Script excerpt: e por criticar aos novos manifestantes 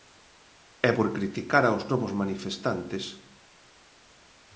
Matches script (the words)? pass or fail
pass